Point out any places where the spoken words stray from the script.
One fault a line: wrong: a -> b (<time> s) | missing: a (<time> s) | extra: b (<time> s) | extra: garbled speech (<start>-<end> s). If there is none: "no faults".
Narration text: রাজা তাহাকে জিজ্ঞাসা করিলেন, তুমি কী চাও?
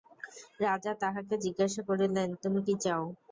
no faults